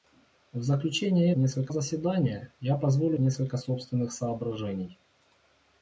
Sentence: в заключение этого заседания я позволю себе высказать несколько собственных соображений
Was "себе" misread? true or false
true